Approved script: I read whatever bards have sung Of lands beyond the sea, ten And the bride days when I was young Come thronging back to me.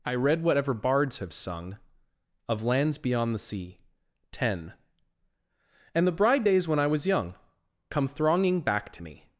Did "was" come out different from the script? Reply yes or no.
no